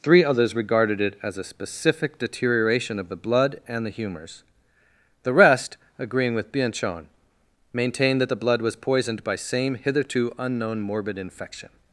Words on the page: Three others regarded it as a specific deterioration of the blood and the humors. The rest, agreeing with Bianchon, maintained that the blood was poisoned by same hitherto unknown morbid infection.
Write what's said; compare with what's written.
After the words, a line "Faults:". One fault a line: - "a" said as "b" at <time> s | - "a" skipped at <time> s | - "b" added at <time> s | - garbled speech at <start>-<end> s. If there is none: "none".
Three others regarded it as a specific deterioration of the blood and the humors. The rest, agreeing with Bianchon, maintained that the blood was poisoned by same hitherto unknown morbid infection.
Faults:
none